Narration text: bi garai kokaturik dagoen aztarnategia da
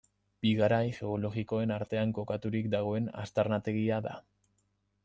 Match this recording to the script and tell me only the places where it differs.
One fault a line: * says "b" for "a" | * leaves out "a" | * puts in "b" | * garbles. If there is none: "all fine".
* puts in "geologikoen artean"